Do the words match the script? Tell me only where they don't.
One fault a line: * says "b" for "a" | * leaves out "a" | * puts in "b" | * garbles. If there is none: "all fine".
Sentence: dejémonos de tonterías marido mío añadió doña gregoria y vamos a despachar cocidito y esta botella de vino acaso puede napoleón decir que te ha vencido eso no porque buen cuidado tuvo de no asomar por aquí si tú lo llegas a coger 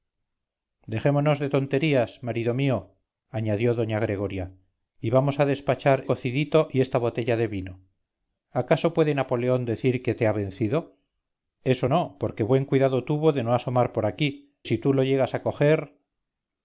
all fine